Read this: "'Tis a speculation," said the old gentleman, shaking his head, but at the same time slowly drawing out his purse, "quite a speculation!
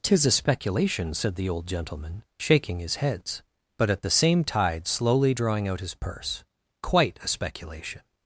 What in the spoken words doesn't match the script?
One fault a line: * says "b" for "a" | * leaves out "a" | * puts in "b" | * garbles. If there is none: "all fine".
* says "heads" for "head"
* says "tide" for "time"